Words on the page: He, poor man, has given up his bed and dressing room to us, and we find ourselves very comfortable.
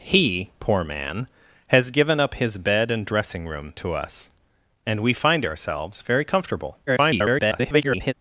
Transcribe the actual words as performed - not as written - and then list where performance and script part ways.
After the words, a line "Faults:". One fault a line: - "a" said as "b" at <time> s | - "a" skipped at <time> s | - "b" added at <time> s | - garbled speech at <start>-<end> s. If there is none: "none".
He, poor man, has given up his bed and dressing room to us, and we find ourselves very comfortable. [garbled]
Faults:
- garbled speech at 6.9-8.1 s